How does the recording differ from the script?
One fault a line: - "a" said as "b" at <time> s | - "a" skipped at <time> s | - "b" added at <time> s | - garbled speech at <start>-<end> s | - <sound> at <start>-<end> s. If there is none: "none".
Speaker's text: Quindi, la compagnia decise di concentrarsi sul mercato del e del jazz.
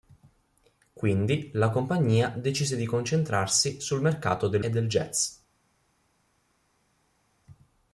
none